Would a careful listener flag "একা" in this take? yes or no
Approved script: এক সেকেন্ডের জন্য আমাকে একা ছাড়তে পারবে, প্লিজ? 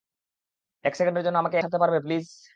yes